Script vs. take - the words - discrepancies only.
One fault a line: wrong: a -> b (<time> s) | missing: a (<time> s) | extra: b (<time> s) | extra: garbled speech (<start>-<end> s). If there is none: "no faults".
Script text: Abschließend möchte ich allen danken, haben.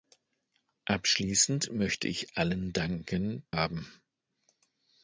no faults